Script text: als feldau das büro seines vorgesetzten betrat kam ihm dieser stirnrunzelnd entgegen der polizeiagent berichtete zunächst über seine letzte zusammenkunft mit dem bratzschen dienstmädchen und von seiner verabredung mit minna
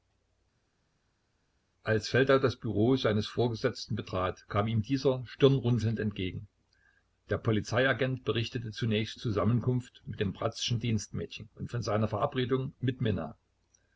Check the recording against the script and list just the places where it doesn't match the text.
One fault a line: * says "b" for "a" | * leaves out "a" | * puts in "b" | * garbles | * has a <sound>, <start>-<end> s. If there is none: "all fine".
* leaves out "über seine letzte"